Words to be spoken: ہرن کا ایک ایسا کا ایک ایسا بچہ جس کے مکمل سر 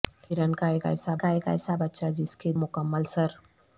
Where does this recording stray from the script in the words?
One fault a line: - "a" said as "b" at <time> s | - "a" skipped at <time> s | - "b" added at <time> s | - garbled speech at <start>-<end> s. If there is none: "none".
none